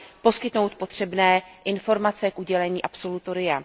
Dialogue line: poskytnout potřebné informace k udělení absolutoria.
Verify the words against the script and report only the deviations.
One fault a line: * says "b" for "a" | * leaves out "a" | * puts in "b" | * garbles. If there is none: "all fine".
all fine